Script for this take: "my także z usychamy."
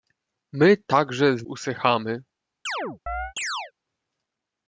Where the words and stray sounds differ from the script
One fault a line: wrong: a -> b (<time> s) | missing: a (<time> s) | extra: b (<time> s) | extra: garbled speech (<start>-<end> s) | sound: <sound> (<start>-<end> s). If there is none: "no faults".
sound: chirp (2.7-3.7 s)